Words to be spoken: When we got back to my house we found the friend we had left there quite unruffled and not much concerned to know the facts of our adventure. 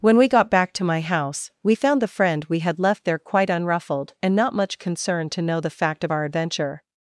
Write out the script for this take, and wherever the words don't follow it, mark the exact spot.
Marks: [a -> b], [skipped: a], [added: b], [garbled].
When we got back to my house we found the friend we had left there quite unruffled and not much concerned to know the [facts -> fact] of our adventure.